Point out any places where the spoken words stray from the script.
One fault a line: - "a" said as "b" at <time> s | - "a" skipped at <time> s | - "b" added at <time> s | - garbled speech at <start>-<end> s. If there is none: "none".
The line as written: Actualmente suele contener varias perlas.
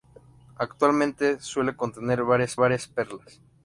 - "varias" added at 2.5 s